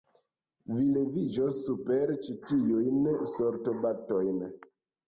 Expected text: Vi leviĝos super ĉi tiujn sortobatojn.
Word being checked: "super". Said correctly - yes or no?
yes